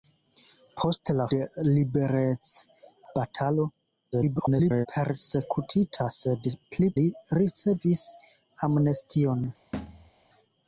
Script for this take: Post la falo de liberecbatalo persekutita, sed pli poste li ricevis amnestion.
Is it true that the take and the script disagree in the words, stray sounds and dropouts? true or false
true